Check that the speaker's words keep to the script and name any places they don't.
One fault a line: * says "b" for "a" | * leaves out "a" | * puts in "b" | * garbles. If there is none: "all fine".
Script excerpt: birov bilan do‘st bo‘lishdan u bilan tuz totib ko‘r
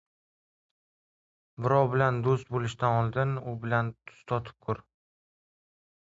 * puts in "oldin"